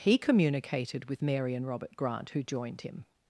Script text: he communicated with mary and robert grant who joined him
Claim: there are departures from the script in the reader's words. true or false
false